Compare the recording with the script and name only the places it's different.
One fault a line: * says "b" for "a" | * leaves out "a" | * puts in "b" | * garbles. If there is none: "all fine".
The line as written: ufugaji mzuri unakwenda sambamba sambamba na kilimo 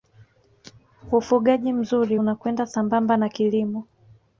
* leaves out "sambamba"